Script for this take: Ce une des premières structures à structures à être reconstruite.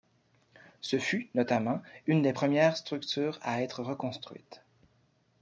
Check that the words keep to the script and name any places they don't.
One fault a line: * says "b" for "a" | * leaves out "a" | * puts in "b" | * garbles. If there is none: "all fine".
* puts in "fut notamment"
* leaves out "structures à"